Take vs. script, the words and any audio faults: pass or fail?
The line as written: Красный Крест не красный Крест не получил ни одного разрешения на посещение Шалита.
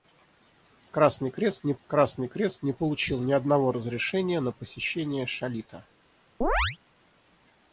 fail